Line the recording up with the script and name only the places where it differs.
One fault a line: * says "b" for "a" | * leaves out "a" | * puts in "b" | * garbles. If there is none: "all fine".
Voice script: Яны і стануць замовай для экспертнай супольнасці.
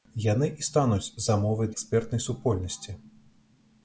* leaves out "для"